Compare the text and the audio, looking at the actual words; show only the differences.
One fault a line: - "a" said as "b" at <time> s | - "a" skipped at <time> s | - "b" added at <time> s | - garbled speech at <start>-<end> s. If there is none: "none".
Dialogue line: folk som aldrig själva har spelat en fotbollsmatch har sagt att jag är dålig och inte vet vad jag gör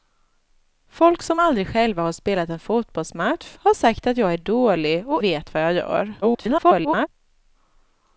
- "inte" skipped at 5.2 s
- garbled speech at 6.2-7.1 s